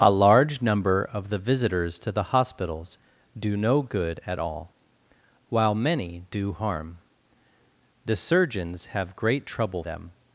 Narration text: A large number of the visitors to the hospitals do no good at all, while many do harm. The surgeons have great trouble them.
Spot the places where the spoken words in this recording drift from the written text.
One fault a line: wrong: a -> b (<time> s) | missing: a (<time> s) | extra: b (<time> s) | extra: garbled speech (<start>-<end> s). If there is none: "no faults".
no faults